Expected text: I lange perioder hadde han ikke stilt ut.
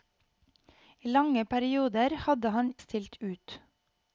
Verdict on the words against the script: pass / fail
fail